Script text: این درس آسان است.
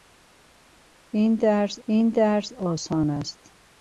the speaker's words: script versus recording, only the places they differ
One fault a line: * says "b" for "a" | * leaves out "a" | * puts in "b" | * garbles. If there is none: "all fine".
* puts in "این درس"